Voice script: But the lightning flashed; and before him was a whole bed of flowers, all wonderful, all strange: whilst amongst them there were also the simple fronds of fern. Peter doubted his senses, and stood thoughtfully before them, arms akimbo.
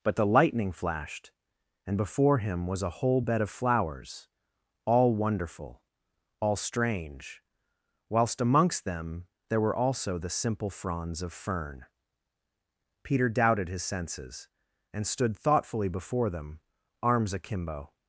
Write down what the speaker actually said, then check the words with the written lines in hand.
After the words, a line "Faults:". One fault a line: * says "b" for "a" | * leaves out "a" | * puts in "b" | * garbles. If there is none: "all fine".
But the lightning flashed; and before him was a whole bed of flowers, all wonderful, all strange: whilst amongst them there were also the simple fronds of fern. Peter doubted his senses, and stood thoughtfully before them, arms akimbo.
Faults:
all fine